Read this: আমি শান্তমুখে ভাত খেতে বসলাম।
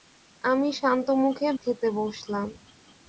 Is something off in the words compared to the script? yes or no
yes